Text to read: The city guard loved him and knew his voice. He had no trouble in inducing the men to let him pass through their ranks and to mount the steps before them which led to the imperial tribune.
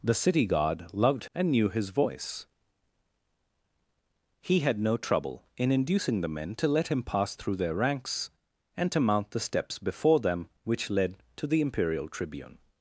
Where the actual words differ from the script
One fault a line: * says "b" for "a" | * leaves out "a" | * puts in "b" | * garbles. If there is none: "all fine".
* leaves out "him"